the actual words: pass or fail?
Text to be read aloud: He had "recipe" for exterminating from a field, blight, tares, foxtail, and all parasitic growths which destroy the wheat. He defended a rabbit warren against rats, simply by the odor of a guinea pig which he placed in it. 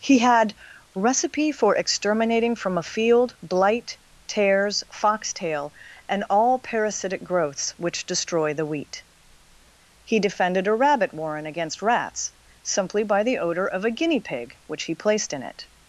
pass